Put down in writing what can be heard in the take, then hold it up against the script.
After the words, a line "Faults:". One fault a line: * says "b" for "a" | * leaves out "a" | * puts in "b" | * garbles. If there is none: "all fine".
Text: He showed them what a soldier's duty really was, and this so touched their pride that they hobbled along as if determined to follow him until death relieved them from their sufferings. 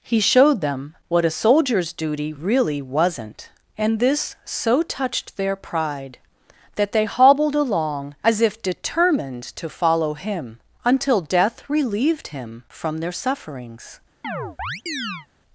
He showed them what a soldier's duty really wasn't, and this so touched their pride that they hobbled along as if determined to follow him until death relieved him from their sufferings.
Faults:
* says "wasn't" for "was"
* says "him" for "them"